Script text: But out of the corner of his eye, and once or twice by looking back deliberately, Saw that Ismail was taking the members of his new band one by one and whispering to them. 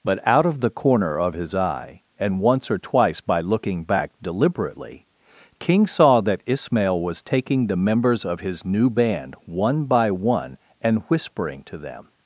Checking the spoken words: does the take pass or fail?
fail